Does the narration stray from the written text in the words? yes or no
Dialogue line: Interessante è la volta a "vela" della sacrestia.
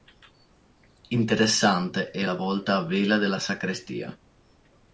no